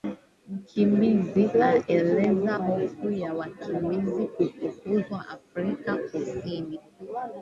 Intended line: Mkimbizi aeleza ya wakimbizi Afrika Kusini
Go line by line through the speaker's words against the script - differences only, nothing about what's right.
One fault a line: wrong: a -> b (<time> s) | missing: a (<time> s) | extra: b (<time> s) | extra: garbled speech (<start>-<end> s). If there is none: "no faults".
extra: hofu (2.5 s)
extra: kufukuzwa (4.3 s)